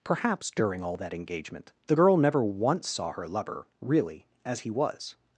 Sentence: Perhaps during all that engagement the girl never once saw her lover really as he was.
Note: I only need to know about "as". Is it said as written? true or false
true